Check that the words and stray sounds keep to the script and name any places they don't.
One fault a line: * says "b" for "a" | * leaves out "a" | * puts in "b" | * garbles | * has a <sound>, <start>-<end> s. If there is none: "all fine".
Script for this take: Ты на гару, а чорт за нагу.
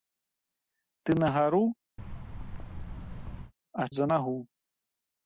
* has a thud, 2.0-3.5 s
* leaves out "чорт"